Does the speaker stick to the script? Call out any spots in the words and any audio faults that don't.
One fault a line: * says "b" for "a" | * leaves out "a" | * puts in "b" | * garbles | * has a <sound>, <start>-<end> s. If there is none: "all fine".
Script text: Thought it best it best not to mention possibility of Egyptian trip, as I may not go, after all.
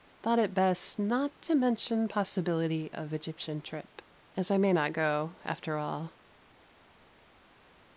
* leaves out "it best"